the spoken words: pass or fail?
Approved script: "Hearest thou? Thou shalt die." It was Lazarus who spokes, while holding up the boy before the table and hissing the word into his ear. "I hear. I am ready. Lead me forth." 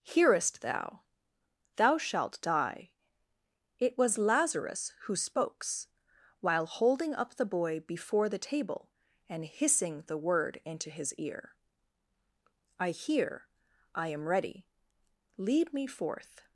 pass